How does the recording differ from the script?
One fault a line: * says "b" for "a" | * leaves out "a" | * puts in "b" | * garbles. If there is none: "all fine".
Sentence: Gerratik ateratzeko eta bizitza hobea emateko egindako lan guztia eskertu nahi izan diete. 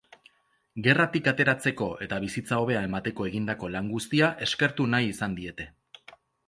all fine